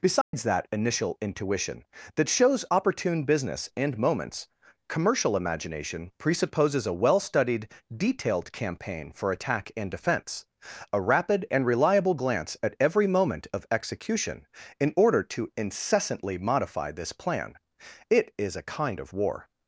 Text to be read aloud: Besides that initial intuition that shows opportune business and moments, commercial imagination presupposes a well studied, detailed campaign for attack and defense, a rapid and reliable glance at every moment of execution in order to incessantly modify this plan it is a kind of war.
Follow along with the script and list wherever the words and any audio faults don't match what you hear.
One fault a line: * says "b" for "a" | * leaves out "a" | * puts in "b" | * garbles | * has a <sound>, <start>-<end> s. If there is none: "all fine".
* has a dropout, 0.2-0.3 s